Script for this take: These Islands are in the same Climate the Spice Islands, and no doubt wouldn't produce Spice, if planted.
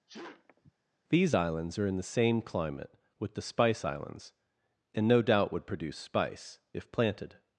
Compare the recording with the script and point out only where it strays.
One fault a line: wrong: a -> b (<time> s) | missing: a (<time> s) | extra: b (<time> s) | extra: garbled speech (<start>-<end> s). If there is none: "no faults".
extra: with (3.2 s)
wrong: wouldn't -> would (5.5 s)